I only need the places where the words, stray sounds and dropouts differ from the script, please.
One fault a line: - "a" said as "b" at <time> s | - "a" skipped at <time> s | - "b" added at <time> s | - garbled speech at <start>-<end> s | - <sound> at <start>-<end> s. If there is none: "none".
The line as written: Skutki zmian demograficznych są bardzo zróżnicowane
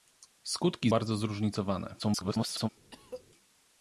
- "zmian demograficznych są" skipped at 0.9 s
- garbled speech at 2.0-2.7 s
- cough at 2.9-3.2 s